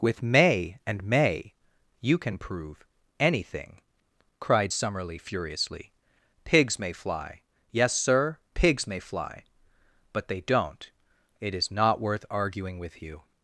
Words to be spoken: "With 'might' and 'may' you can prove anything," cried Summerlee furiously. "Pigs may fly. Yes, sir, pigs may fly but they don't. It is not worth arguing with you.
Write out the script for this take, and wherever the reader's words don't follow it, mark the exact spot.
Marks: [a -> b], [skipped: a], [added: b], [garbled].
"With ['might' -> may] and 'may' you can prove anything," cried Summerlee furiously. "Pigs may fly. Yes, sir, pigs may fly but they don't. It is not worth arguing with you.